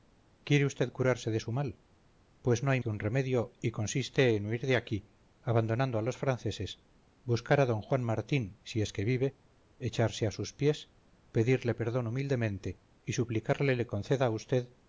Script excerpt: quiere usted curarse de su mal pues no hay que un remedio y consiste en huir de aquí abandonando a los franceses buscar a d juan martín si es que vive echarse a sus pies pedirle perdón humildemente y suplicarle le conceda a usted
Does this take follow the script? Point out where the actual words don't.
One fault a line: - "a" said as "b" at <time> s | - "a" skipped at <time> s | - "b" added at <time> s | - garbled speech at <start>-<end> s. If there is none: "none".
none